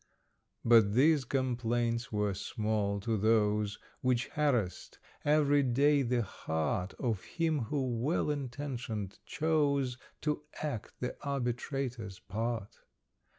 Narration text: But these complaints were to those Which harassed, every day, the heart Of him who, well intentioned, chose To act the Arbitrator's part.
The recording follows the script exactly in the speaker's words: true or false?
false